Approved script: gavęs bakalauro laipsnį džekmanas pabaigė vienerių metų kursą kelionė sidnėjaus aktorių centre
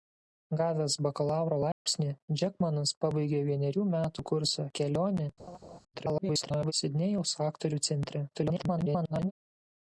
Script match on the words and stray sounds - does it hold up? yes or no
no